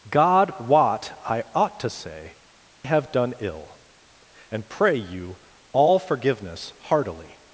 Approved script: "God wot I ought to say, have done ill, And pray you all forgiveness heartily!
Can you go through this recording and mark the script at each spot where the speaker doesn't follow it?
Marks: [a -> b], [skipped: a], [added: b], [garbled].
"God wot I ought to say, have done ill, And pray you all forgiveness heartily!